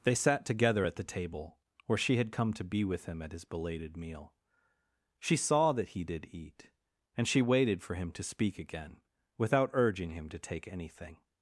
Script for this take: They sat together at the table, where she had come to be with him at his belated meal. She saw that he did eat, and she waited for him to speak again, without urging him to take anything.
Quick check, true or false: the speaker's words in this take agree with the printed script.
true